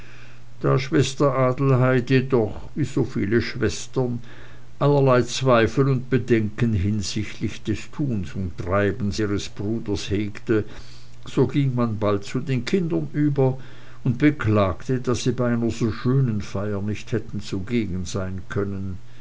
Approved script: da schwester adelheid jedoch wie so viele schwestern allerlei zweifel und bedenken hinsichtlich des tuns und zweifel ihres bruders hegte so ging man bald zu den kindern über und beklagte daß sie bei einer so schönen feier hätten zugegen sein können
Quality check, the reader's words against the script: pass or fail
fail